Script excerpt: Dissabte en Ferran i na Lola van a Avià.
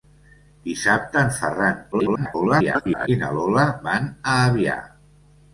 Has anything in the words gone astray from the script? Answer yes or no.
yes